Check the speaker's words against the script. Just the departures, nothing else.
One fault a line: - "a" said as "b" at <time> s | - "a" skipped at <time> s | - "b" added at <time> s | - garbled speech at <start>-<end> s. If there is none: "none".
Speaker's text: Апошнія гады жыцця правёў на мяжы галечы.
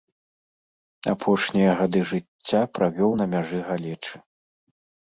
none